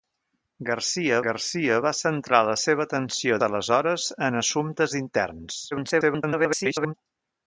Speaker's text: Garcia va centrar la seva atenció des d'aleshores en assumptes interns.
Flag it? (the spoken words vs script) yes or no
yes